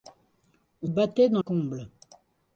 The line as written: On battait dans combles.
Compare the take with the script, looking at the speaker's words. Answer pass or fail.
pass